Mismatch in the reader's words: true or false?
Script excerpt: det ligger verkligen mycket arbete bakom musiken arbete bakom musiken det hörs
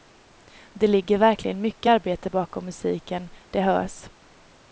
true